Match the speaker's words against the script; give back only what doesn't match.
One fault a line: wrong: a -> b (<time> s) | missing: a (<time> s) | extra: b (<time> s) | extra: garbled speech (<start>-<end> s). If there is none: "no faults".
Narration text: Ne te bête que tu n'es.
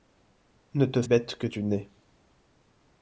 no faults